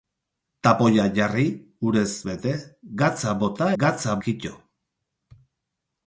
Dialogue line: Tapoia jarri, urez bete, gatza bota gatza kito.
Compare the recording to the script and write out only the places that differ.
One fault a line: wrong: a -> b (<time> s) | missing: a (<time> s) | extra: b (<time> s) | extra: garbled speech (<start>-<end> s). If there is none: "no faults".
no faults